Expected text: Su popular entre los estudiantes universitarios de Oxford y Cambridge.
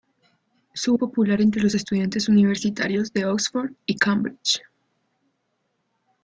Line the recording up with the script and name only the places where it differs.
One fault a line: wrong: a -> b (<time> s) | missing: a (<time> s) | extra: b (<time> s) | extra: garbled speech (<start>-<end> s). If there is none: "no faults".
no faults